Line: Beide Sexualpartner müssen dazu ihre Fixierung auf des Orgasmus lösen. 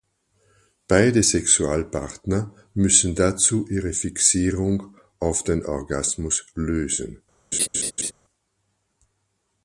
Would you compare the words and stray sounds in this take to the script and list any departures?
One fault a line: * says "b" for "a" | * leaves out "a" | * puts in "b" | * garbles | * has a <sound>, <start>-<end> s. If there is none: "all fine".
* says "den" for "des"
* has a laugh, 7.5-8.1 s